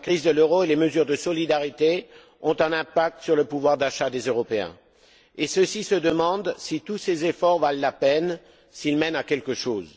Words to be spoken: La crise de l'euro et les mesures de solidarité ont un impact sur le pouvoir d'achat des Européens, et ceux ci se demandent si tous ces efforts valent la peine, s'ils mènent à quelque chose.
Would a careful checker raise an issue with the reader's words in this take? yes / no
no